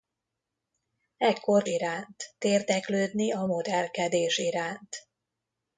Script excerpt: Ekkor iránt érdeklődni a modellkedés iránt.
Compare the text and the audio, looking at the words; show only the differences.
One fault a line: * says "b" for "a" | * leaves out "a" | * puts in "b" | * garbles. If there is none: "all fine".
all fine